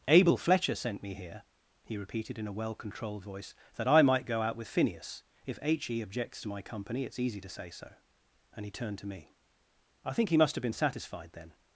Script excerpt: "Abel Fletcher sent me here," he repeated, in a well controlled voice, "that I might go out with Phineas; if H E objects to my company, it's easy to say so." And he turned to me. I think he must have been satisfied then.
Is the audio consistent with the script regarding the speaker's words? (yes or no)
yes